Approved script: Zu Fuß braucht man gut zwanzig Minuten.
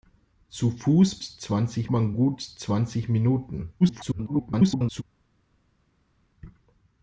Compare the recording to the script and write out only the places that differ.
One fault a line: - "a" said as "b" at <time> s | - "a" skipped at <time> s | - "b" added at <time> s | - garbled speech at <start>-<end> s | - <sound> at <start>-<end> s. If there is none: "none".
- "braucht" said as "zwanzig" at 1.2 s
- garbled speech at 3.8-5.0 s